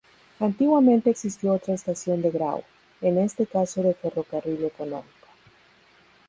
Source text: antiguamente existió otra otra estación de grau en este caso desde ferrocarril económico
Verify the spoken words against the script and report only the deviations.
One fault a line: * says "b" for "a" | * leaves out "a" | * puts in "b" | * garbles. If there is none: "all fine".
* leaves out "otra"
* says "de" for "desde"